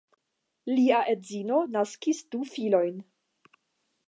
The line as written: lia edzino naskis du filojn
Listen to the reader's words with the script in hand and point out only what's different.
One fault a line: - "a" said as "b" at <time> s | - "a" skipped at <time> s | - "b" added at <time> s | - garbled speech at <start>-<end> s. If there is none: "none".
none